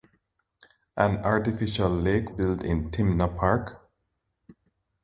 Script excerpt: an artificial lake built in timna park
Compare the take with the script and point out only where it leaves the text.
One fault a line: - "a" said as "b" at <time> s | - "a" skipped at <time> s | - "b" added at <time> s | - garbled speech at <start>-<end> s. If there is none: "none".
none